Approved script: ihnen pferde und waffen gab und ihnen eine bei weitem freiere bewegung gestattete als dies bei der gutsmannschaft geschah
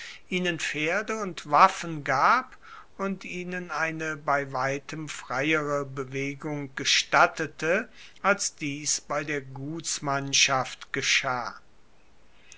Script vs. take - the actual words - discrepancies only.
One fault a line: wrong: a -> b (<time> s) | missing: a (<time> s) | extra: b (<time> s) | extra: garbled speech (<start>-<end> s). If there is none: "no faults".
no faults